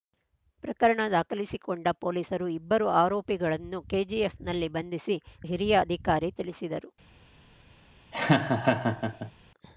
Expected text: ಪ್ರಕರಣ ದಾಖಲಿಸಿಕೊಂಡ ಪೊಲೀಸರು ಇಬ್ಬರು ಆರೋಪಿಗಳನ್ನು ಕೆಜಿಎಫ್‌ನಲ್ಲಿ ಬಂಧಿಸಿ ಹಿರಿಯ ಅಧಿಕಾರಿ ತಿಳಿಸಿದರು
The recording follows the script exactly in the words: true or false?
true